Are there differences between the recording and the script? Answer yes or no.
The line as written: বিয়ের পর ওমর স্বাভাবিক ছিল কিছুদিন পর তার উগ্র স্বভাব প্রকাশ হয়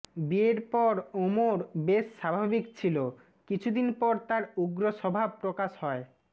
yes